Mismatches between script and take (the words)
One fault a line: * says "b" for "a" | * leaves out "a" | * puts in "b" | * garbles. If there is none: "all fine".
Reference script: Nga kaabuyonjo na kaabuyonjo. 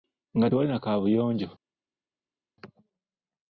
* says "tewali" for "kaabuyonjo"